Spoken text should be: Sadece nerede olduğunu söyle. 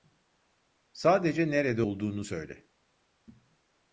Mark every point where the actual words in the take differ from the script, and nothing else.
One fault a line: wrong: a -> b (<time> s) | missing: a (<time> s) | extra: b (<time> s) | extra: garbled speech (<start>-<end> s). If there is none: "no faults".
no faults